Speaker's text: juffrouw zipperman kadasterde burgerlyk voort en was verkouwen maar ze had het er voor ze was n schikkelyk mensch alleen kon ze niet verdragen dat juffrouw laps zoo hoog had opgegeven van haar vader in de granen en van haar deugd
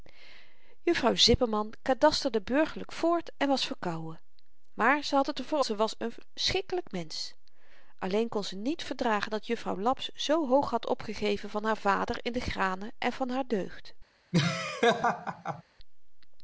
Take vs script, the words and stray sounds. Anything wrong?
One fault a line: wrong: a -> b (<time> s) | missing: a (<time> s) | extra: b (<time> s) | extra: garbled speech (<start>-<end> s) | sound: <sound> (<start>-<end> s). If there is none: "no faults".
sound: laugh (14.3-15.6 s)